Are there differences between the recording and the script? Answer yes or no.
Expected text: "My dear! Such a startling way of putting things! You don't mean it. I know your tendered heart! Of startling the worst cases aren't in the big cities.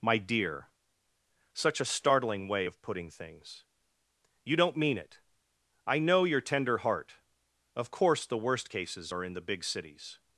yes